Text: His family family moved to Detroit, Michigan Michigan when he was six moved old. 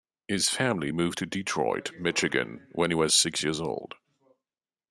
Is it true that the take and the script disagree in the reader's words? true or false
true